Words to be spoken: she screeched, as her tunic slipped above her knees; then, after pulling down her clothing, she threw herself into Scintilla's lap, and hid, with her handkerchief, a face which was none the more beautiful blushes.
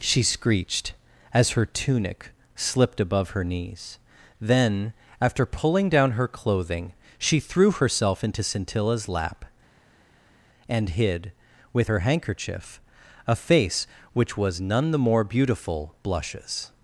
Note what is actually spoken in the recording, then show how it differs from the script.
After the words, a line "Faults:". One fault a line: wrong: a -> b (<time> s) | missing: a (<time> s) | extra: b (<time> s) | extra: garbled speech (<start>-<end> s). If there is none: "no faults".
she screeched, as her tunic slipped above her knees; then, after pulling down her clothing, she threw herself into Scintilla's lap, and hid, with her handkerchief, a face which was none the more beautiful blushes.
Faults:
no faults